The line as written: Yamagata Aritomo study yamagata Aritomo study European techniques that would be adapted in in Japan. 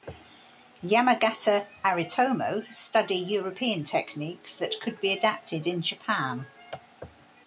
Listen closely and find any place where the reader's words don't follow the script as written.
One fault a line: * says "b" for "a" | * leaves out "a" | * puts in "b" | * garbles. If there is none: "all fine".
* leaves out "yamagata Aritomo study"
* says "could" for "would"
* leaves out "in"